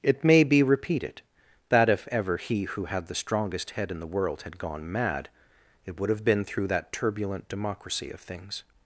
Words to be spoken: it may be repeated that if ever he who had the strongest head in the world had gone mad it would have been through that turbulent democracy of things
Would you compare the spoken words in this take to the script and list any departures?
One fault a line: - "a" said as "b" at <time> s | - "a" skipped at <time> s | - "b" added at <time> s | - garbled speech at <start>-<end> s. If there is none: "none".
none